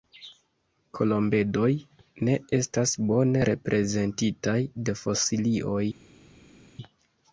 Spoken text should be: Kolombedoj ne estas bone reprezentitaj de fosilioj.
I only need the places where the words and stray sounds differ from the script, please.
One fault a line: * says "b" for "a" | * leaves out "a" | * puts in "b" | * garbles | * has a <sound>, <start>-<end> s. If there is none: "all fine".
all fine